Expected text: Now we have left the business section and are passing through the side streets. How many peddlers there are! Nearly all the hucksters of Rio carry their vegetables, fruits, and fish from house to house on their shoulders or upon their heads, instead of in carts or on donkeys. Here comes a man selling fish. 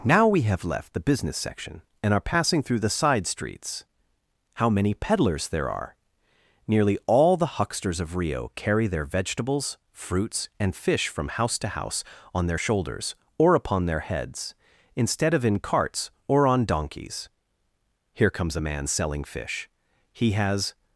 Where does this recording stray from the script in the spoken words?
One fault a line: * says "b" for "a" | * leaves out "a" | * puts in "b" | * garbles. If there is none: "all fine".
* puts in "He has"